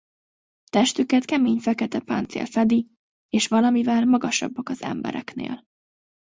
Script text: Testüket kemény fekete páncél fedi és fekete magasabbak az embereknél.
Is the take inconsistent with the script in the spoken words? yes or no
yes